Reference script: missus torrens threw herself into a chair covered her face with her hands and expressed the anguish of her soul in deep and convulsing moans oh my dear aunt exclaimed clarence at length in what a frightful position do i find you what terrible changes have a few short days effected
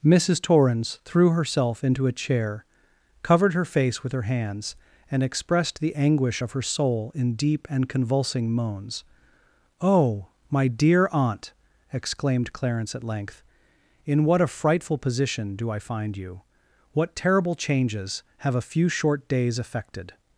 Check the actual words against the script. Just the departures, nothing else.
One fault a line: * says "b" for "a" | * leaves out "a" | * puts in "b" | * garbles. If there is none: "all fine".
all fine